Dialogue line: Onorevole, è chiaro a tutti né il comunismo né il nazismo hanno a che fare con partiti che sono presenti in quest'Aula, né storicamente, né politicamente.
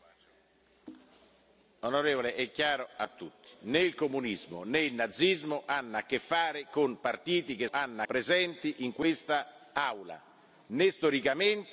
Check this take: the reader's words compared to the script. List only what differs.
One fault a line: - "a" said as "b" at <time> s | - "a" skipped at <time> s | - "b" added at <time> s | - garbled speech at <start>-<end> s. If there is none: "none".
- "sono" said as "hanno" at 7.7 s